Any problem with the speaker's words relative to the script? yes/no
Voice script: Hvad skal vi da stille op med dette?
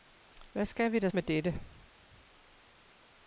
yes